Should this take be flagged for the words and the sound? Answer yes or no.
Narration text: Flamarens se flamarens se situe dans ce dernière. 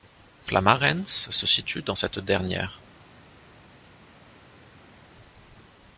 yes